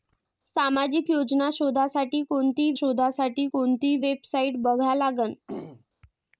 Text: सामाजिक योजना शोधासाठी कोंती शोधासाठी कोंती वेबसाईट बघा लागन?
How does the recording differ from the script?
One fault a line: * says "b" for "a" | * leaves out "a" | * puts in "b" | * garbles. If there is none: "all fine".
all fine